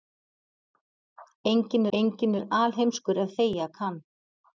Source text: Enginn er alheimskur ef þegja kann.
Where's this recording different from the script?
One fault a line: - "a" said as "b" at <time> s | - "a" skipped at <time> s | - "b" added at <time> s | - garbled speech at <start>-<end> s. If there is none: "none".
- "enginn" added at 2.0 s